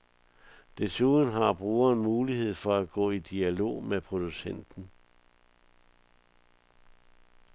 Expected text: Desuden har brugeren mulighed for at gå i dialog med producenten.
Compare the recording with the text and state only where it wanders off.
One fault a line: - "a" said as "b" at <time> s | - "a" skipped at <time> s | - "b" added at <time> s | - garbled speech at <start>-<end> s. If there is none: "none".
none